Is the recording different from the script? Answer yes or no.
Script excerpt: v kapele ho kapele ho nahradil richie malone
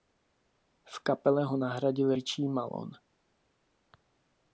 yes